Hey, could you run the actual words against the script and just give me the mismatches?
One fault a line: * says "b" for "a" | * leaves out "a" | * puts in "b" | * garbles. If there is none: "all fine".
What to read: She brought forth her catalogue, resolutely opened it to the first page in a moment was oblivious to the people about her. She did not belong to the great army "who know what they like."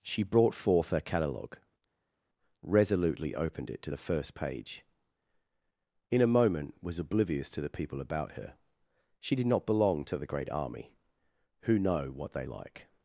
all fine